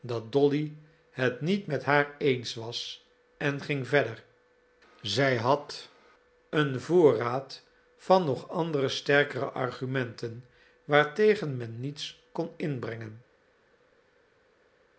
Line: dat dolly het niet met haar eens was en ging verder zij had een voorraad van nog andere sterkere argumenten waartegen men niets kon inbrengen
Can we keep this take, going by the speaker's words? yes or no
yes